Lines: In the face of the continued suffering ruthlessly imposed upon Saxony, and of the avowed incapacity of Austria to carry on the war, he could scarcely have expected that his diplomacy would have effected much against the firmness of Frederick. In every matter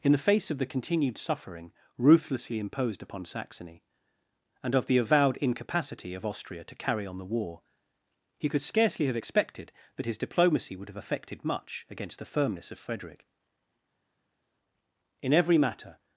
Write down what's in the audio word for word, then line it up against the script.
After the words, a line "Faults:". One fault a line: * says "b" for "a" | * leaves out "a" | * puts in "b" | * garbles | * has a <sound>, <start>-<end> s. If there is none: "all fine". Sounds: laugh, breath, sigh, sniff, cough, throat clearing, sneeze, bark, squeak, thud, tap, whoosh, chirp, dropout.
In the face of the continued suffering ruthlessly imposed upon Saxony, and of the avowed incapacity of Austria to carry on the war, he could scarcely have expected that his diplomacy would have effected much against the firmness of Frederick. In every matter
Faults:
all fine